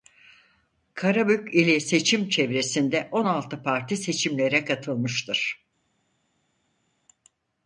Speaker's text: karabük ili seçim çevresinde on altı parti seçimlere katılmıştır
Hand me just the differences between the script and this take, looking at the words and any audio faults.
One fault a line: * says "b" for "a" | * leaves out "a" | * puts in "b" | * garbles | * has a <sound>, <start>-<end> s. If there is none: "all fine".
all fine